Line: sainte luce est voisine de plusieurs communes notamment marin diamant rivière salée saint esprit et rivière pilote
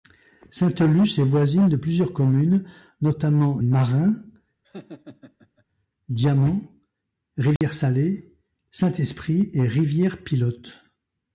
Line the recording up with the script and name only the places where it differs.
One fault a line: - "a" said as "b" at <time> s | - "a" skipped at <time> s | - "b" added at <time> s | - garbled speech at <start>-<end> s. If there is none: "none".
none